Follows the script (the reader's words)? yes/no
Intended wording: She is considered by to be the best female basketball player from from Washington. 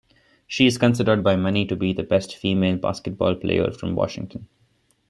no